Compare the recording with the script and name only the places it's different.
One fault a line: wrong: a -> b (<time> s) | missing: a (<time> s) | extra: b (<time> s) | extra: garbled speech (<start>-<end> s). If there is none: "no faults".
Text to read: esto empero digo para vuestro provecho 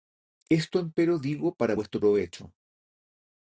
no faults